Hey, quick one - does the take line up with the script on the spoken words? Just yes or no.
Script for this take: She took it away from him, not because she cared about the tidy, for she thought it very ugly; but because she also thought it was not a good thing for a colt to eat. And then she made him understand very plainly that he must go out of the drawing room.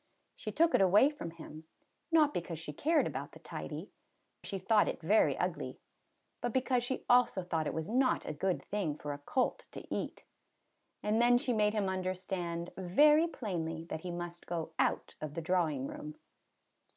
no